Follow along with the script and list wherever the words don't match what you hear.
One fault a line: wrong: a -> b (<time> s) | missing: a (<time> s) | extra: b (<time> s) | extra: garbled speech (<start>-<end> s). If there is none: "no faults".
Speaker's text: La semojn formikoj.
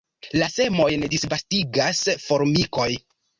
extra: disvastigas (1.2 s)